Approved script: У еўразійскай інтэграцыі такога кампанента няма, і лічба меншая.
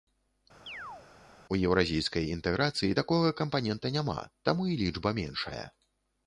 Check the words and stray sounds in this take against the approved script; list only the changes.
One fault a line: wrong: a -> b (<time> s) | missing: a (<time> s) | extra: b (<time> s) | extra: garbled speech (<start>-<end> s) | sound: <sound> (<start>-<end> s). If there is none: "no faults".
sound: chirp (0.7-1.1 s)
extra: таму (4.5 s)